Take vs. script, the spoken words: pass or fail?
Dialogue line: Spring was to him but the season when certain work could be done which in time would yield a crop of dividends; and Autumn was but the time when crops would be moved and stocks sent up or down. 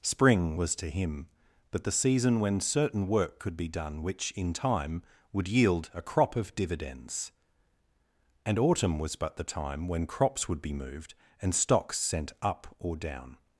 pass